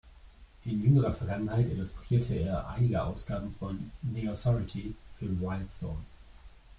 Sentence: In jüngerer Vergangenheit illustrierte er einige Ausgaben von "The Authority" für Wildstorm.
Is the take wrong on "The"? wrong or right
right